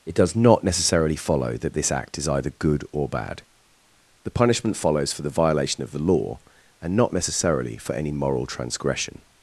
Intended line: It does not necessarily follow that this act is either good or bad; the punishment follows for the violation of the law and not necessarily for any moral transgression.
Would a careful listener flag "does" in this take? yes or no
no